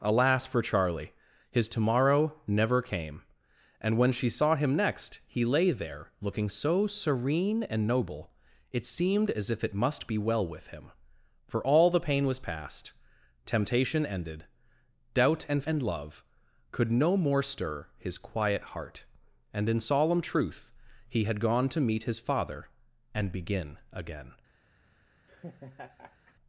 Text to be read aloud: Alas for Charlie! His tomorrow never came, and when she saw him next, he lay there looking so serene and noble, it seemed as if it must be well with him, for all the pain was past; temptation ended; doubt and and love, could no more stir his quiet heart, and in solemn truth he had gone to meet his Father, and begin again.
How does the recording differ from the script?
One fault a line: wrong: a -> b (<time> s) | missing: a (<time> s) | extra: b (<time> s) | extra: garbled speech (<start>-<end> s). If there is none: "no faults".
no faults